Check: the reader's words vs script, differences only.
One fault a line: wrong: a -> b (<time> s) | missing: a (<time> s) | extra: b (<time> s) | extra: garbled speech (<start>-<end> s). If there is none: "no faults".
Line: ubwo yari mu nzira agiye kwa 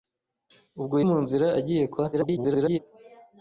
missing: yari (0.9 s)
extra: garbled speech (2.1-2.8 s)